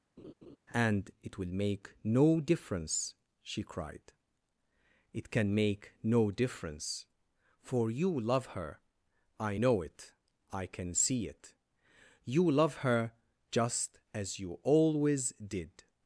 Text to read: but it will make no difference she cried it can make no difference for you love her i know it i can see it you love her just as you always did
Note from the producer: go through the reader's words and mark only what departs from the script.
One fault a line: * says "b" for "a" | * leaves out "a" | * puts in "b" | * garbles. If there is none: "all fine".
* says "and" for "but"